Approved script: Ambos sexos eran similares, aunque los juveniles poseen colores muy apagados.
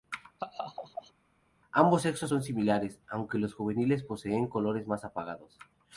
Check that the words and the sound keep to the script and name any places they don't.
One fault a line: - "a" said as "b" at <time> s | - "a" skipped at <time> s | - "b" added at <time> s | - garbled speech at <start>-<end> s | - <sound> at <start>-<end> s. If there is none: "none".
- laugh at 0.4-1.1 s
- "eran" said as "son" at 2.2 s
- "muy" said as "más" at 4.9 s